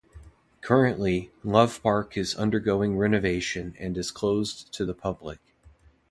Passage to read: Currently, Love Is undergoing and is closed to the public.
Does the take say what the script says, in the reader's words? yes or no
no